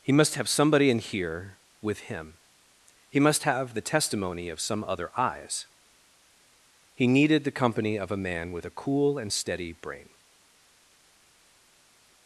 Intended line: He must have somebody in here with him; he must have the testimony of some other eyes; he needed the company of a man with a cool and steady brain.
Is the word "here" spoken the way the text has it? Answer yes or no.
yes